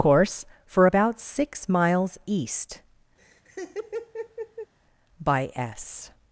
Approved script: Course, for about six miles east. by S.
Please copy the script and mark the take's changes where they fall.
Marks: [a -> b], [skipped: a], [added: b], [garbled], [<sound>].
Course, for about six miles east. [laugh] by S.